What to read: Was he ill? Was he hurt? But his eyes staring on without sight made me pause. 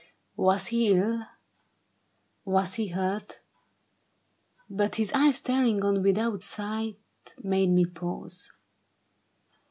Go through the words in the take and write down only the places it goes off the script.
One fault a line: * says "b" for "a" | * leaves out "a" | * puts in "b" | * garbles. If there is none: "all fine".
all fine